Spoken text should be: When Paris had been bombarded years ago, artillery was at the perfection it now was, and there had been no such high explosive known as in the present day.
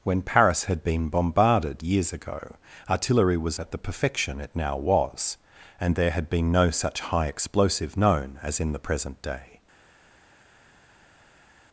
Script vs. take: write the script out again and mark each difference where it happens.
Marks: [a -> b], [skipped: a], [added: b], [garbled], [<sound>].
When Paris had been bombarded years ago, artillery was at the perfection it now was, and there had been no such high explosive known as in the present day.